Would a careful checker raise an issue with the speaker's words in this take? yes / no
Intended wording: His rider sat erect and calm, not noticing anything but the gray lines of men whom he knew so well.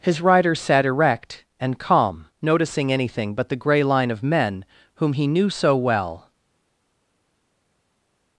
yes